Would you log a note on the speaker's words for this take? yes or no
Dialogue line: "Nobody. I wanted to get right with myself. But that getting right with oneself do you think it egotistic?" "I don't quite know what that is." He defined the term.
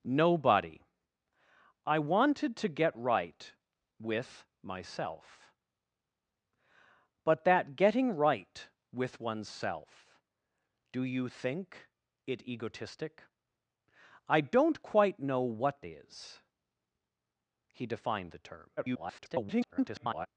yes